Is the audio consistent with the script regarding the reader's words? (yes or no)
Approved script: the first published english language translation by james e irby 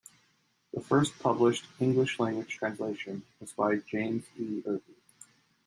no